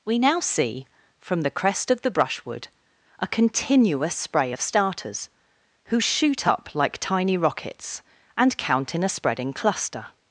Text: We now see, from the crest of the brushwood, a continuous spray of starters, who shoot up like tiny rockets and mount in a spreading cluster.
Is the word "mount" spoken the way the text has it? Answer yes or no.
no